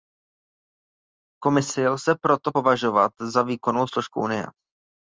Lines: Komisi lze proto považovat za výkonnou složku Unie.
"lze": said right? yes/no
yes